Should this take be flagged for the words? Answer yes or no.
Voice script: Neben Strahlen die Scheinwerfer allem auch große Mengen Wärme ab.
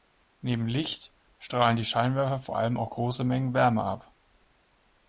yes